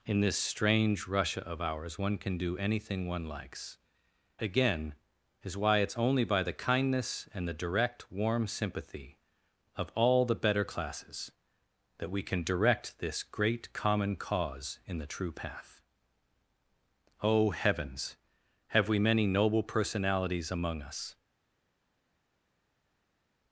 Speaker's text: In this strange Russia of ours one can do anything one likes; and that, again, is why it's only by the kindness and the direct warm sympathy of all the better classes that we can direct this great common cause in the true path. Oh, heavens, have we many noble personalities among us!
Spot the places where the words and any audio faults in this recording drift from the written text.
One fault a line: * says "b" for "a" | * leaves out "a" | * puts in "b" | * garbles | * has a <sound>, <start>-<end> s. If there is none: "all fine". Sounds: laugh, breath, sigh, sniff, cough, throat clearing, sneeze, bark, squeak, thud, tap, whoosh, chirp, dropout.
* leaves out "and that"